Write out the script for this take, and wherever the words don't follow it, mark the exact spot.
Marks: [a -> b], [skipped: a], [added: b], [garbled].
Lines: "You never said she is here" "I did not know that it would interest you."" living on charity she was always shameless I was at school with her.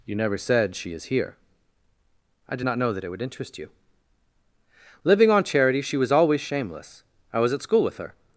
"You never said she is here" "I did not know that it would interest you."" living on charity she was always shameless I was at school with her.